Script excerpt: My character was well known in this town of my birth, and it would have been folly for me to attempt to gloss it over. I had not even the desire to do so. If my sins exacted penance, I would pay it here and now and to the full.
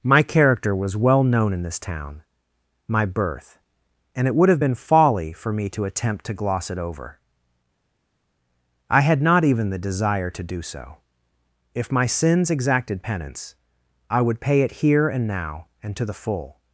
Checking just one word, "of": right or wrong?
wrong